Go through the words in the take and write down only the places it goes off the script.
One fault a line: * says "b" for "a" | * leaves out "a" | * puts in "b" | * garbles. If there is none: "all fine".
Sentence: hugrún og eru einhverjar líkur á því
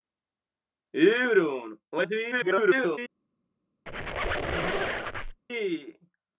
* leaves out "eru einhverjar líkur"
* garbles